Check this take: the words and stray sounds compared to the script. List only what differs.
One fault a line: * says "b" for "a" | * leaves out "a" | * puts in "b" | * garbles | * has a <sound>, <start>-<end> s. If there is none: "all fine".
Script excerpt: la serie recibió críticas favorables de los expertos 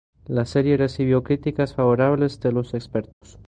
* has a dropout, 3.1-3.2 s